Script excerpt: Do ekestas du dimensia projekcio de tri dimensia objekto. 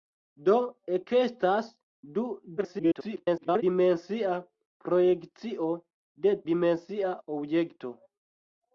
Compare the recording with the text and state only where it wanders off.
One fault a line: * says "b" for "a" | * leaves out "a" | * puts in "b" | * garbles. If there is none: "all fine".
* garbles
* leaves out "tri"